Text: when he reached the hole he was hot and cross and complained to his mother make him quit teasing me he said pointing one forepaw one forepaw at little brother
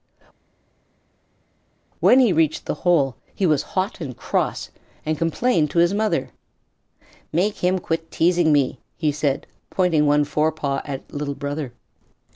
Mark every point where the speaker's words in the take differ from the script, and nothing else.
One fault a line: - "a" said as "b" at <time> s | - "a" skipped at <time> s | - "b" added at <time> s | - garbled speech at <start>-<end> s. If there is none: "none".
- "one forepaw" skipped at 10.8 s